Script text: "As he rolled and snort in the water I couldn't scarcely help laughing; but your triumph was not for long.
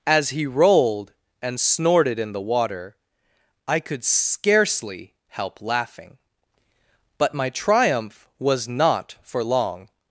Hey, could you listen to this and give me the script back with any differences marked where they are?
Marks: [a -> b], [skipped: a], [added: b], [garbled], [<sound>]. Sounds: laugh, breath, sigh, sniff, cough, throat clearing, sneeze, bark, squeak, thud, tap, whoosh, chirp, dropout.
"As he rolled and [snort -> snorted] in the water I [couldn't -> could] scarcely help laughing; but [your -> my] triumph was not for long.